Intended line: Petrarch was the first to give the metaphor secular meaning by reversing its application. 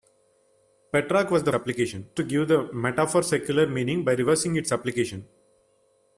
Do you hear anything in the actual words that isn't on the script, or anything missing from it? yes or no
yes